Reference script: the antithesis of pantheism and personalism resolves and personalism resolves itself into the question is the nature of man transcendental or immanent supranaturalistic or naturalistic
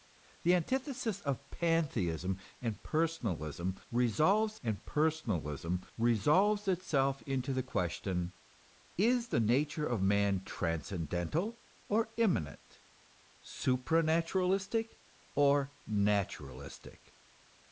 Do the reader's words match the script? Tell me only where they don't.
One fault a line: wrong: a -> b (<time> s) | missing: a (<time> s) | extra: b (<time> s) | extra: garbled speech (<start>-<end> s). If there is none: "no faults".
no faults